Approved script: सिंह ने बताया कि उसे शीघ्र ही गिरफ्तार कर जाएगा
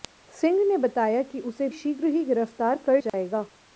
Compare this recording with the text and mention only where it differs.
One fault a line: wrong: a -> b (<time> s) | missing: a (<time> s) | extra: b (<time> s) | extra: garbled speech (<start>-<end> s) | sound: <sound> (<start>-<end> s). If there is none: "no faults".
sound: dropout (3.1-3.1 s)